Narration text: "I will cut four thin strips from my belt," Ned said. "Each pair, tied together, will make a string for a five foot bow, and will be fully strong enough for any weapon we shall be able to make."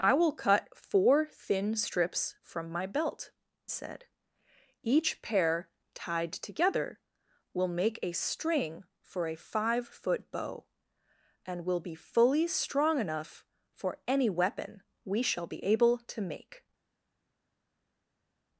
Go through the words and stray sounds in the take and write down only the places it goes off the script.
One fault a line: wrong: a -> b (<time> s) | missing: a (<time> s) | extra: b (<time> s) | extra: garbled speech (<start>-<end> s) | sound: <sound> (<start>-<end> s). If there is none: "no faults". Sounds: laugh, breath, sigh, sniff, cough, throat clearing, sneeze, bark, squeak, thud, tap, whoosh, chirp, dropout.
missing: Ned (3.3 s)